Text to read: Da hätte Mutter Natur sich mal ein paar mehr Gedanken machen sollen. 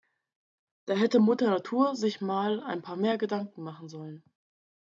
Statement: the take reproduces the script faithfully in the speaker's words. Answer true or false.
true